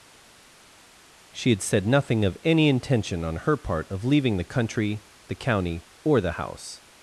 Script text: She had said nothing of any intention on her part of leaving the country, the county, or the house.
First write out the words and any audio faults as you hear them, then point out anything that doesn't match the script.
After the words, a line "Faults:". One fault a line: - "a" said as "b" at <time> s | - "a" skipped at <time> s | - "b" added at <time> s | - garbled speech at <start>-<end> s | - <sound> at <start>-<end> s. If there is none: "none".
She had said nothing of any intention on her part of leaving the country, the county, or the house.
Faults:
none